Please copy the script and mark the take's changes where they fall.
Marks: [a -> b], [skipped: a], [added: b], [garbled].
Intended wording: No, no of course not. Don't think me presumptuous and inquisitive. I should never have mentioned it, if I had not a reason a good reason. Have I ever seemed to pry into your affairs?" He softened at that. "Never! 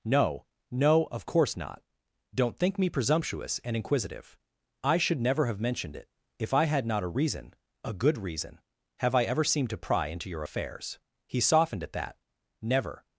No, no of course not. Don't think me presumptuous and inquisitive. I should never have mentioned it, if I had not a reason a good reason. Have I ever seemed to pry into your affairs?" He softened at that. "Never!